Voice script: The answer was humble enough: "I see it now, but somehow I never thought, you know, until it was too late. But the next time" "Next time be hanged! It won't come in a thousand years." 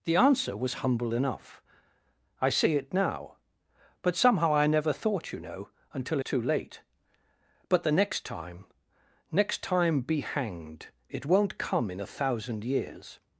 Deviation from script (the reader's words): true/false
true